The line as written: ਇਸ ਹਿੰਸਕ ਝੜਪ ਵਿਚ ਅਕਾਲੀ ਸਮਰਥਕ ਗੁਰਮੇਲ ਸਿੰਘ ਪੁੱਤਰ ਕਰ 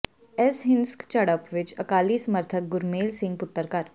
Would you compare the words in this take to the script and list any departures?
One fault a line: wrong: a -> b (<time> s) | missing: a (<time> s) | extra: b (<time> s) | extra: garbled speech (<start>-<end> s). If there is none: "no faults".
no faults